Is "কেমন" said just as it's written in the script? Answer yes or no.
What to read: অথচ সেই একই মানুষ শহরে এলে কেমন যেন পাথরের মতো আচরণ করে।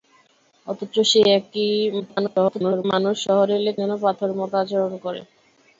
no